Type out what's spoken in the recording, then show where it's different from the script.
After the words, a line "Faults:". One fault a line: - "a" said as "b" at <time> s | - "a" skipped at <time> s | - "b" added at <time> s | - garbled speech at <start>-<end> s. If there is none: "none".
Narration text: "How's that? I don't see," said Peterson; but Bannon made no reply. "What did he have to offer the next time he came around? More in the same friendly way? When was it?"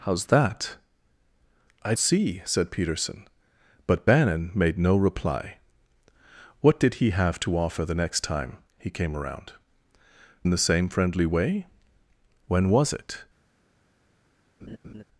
"How's that? I see," said Peterson; but Bannon made no reply. "What did he have to offer the next time he came around? In the same friendly way? When was it?"
Faults:
- "don't" skipped at 1.9 s
- "More" skipped at 9.5 s